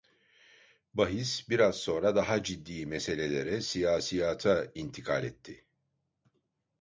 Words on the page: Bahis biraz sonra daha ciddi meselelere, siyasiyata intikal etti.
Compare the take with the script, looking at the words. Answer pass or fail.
pass